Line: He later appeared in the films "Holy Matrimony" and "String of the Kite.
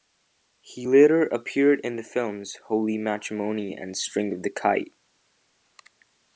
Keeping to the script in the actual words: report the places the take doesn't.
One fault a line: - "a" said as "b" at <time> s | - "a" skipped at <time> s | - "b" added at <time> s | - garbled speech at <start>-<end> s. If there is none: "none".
none